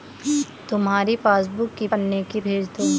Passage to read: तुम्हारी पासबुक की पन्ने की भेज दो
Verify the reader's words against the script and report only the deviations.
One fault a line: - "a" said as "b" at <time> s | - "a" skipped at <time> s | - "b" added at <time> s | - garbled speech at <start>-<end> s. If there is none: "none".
none